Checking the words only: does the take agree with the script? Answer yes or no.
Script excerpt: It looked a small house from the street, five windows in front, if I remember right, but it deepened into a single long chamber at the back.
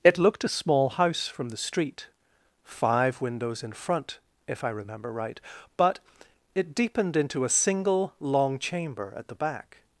yes